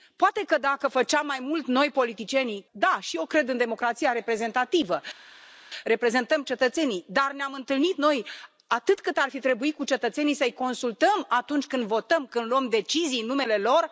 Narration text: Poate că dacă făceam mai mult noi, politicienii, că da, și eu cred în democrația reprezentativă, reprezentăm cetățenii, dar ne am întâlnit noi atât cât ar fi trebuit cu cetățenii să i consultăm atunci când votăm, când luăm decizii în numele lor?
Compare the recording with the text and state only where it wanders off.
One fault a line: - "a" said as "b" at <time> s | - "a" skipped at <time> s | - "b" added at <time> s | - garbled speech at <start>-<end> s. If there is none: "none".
- "că" skipped at 2.6 s